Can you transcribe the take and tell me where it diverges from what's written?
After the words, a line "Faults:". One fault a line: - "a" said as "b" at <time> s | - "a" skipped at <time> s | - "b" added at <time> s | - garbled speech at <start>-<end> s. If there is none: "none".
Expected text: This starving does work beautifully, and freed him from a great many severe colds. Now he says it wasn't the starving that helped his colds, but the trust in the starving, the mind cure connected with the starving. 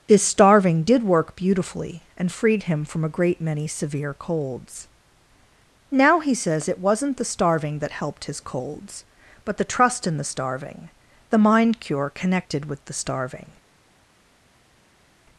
This starving did work beautifully, and freed him from a great many severe colds. Now he says it wasn't the starving that helped his colds, but the trust in the starving, the mind cure connected with the starving.
Faults:
- "does" said as "did" at 0.8 s